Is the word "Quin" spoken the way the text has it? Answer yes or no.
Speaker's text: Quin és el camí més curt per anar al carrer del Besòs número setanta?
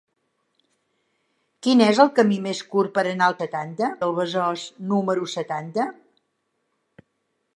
yes